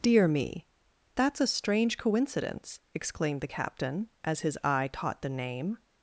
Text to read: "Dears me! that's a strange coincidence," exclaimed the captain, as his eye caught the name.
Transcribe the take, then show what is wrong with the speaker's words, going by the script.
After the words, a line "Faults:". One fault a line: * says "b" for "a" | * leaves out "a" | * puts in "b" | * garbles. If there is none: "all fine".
"Dear me! that's a strange coincidence," exclaimed the captain, as his eye caught the name.
Faults:
* says "Dear" for "Dears"